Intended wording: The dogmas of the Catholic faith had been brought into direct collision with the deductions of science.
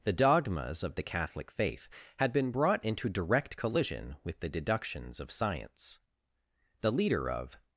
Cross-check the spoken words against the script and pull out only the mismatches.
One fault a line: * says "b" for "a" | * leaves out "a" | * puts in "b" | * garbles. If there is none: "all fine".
* puts in "The leader of"